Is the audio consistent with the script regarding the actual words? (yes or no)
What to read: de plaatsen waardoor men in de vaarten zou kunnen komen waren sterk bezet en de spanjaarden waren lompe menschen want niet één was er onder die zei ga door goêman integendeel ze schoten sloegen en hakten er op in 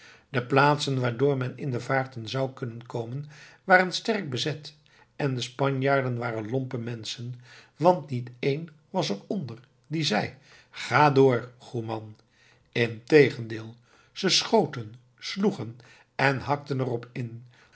yes